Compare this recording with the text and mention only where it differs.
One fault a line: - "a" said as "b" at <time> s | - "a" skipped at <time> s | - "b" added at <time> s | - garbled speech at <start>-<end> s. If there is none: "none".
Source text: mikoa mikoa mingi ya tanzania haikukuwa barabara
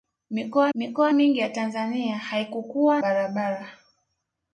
none